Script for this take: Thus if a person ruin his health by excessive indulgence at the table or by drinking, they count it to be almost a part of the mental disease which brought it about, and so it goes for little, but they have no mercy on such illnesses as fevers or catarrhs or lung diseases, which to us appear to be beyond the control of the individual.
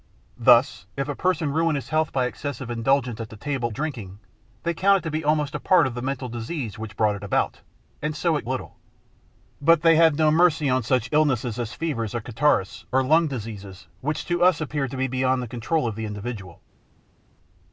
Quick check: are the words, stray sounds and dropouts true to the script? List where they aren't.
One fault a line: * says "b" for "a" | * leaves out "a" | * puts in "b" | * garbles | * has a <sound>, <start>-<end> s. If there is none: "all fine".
* leaves out "or by"
* leaves out "goes for"